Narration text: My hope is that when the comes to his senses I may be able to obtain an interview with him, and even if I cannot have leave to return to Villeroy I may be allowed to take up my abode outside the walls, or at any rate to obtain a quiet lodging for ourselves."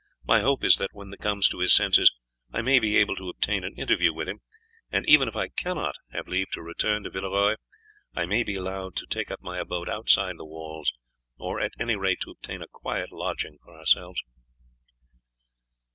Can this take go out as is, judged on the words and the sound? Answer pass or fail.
pass